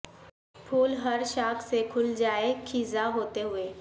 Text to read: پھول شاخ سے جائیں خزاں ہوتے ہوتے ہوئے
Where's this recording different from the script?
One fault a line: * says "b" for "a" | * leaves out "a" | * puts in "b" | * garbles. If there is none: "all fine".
* puts in "ہر"
* puts in "کھل"
* leaves out "ہوتے"